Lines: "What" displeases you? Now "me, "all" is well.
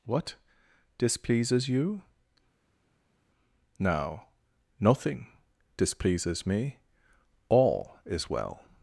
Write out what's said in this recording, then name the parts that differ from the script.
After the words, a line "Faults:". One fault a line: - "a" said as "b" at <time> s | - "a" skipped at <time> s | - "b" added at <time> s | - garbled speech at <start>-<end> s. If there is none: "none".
"What" displeases you? Now "nothing" displeases me, "all" is well.
Faults:
- "nothing displeases" added at 4.8 s